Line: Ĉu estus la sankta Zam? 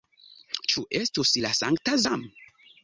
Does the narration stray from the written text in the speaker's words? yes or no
no